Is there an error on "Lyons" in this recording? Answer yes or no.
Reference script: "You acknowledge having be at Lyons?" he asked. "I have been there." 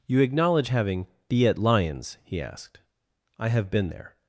no